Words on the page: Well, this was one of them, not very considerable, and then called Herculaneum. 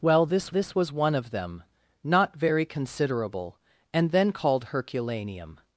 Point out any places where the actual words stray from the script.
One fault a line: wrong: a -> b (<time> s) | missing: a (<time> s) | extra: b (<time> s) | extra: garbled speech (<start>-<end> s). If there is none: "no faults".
extra: this (0.5 s)